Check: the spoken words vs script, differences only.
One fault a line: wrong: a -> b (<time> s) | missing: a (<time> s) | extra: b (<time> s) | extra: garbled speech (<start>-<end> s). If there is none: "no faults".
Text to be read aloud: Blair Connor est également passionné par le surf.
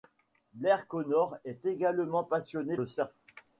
missing: par (2.8 s)